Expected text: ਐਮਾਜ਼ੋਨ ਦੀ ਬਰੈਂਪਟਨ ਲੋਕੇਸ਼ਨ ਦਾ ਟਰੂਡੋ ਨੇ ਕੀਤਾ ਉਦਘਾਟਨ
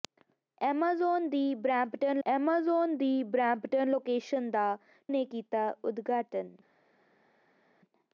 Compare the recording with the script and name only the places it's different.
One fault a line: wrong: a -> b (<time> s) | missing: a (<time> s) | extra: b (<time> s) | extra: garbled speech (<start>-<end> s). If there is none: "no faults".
extra: ਐਮਾਜ਼ੋਨ ਦੀ ਬਰੈਂਪਟਨ (2.3 s)
missing: ਟਰੂਡੋ (4.8 s)